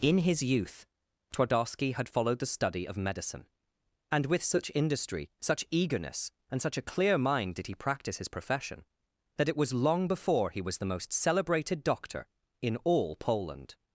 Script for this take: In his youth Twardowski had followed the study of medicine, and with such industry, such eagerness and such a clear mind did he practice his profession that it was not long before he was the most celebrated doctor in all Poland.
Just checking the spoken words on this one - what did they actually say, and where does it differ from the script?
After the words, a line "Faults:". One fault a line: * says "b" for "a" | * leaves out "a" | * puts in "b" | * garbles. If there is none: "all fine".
In his youth Twardowski had followed the study of medicine, and with such industry, such eagerness and such a clear mind did he practice his profession that it was long before he was the most celebrated doctor in all Poland.
Faults:
* leaves out "not"